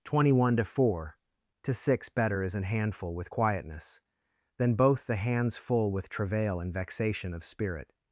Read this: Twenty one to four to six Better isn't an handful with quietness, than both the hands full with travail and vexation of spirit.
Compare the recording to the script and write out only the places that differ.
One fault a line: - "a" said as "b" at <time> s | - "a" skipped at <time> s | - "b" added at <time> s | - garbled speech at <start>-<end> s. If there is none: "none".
- "isn't" said as "is" at 2.4 s